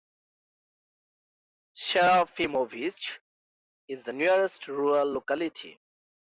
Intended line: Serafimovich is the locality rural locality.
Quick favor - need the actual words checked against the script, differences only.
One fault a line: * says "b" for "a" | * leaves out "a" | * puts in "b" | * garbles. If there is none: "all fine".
* says "nearest" for "locality"